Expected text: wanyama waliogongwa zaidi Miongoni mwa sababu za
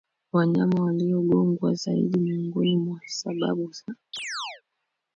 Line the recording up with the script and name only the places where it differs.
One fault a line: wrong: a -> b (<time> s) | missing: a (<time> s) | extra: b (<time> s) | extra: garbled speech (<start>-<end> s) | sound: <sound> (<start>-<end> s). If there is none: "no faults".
sound: chirp (4.1-4.6 s)